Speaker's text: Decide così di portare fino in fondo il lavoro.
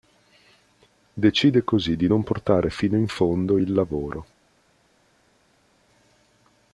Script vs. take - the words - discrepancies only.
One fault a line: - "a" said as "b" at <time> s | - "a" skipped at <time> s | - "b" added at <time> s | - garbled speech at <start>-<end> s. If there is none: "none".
- "non" added at 2.1 s